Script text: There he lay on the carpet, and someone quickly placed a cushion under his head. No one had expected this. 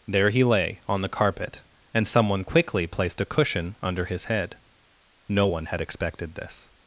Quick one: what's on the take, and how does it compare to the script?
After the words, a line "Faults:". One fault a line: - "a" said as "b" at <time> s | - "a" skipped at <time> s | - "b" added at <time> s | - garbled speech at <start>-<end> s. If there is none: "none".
There he lay on the carpet, and someone quickly placed a cushion under his head. No one had expected this.
Faults:
none